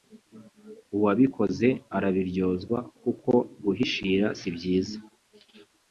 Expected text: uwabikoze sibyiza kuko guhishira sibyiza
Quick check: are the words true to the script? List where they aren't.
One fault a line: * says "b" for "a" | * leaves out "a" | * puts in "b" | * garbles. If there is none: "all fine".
* says "arabiryozwa" for "sibyiza"